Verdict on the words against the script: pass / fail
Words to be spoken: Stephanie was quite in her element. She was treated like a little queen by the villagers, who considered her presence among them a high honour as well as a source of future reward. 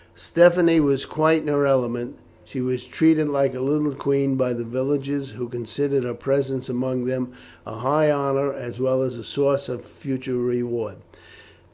pass